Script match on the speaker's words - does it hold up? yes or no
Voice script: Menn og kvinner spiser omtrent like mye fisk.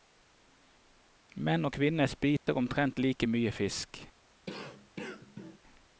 yes